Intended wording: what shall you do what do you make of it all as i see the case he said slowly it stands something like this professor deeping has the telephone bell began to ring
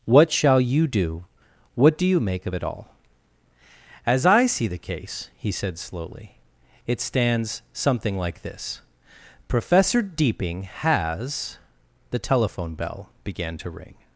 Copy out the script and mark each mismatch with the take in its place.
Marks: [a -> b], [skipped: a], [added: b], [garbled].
what shall you do what do you make of it all as i see the case he said slowly it stands something like this professor deeping has the telephone bell began to ring